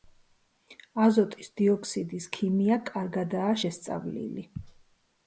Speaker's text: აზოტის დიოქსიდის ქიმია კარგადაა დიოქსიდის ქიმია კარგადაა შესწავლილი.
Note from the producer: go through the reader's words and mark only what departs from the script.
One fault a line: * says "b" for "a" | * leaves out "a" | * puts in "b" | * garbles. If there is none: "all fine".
* leaves out "დიოქსიდის ქიმია კარგადაა"